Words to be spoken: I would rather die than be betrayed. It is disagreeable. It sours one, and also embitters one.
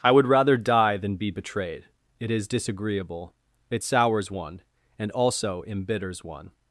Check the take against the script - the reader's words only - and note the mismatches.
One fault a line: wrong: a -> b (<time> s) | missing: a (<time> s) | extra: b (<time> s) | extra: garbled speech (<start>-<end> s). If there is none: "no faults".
no faults